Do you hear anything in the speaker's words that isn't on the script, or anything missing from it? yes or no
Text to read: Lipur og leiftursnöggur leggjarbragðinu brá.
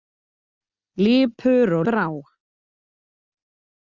yes